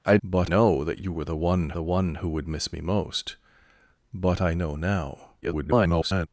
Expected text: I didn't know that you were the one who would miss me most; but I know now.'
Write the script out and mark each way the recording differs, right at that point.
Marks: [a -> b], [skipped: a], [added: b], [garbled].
I [didn't -> but] know that you were the one [added: the one] who would miss me most; but I know now.' [garbled]